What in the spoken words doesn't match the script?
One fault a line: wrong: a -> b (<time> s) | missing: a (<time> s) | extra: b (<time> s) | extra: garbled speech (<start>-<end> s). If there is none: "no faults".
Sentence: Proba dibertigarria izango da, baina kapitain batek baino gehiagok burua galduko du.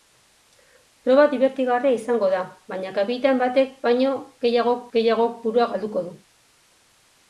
extra: gehiagok (5.0 s)